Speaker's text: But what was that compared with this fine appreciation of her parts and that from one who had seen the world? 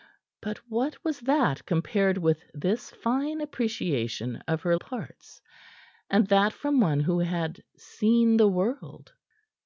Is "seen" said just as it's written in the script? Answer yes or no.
yes